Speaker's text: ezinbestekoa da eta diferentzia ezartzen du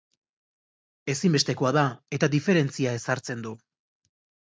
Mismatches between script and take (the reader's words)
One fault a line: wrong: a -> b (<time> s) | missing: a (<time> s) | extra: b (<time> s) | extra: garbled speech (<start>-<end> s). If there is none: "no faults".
no faults